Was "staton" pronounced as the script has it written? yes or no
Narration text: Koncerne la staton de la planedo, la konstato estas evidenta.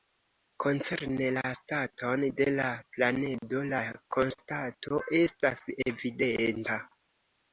yes